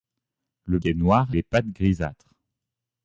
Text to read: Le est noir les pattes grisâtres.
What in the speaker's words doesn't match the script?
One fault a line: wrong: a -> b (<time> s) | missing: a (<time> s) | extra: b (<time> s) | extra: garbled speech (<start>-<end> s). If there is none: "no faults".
no faults